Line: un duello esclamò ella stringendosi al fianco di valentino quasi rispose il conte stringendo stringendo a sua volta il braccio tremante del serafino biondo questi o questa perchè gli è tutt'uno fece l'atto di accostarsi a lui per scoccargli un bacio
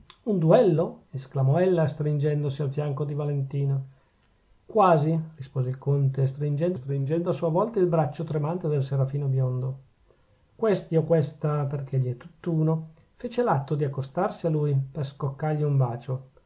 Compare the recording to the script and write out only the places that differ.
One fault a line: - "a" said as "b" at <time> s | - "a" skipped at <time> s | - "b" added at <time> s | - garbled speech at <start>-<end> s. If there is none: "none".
none